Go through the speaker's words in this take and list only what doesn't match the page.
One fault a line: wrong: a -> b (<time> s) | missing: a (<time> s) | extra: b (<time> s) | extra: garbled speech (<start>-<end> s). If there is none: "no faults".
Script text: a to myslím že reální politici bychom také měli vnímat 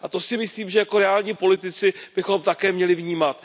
extra: si (0.2 s)
extra: jako (0.8 s)